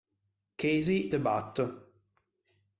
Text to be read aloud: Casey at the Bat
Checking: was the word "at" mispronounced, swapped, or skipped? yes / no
yes